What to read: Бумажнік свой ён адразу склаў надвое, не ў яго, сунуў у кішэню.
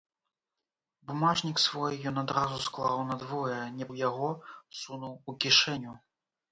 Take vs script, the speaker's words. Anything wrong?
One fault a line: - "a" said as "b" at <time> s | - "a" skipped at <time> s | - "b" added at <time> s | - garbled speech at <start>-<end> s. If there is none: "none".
none